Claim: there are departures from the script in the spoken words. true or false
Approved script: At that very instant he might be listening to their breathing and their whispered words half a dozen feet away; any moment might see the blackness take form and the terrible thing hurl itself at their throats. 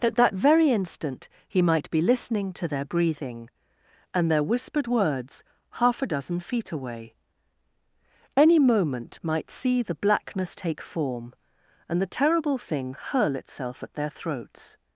false